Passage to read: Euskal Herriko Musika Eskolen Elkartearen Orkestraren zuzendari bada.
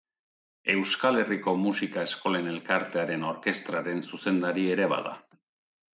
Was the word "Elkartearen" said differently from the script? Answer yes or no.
no